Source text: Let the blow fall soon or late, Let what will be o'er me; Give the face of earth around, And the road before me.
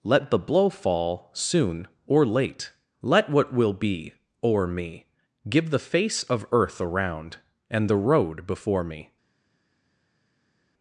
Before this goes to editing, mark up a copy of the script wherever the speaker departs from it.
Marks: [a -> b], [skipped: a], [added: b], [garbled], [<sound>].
Let the blow fall soon or late, Let what will be o'er me; Give the face of earth around, And the road before me.